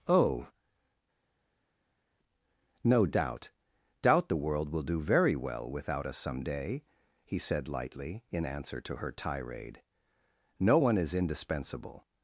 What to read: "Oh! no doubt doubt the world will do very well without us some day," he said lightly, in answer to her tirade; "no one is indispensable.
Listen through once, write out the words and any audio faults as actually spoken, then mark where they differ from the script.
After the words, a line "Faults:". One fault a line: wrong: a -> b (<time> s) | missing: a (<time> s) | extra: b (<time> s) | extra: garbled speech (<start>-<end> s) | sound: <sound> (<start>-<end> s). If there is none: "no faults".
"Oh! no doubt doubt the world will do very well without us some day," he said lightly, in answer to her tirade; "no one is indispensable.
Faults:
no faults